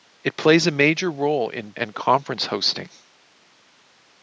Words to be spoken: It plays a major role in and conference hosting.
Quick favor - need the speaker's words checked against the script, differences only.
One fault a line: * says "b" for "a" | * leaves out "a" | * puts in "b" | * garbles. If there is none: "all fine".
all fine